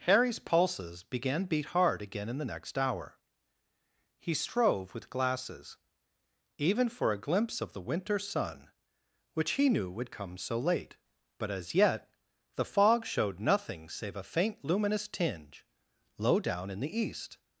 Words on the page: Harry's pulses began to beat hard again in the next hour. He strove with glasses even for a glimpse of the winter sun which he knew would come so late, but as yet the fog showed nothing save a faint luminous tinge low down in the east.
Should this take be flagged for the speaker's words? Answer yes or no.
yes